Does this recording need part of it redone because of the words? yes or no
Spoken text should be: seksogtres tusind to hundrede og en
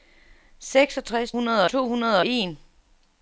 yes